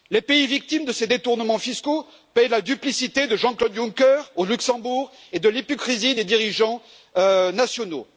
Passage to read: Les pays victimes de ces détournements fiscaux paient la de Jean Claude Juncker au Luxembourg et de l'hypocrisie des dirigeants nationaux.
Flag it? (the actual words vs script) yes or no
yes